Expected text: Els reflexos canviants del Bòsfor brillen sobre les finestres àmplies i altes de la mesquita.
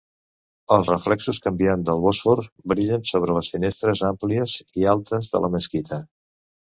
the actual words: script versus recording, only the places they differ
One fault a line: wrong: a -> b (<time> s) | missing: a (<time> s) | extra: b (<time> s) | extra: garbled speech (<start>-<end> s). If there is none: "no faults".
no faults